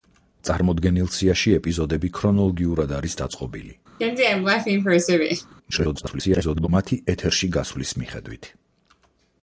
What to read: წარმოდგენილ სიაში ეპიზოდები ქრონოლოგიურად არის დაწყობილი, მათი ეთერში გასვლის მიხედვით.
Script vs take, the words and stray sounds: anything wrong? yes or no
yes